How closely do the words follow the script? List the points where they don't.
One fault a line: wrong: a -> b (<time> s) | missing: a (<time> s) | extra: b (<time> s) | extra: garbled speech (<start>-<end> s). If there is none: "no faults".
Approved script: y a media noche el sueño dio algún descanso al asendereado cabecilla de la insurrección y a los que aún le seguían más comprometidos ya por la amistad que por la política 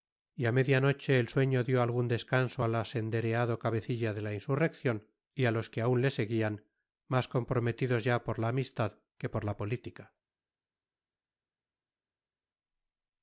no faults